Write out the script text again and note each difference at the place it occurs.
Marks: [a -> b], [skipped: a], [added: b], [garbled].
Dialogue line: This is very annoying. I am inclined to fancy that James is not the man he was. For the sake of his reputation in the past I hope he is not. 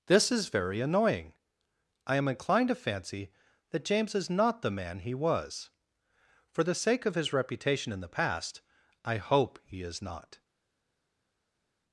This is very annoying. I am inclined to fancy that James is not the man he was. For the sake of his reputation in the past I hope he is not.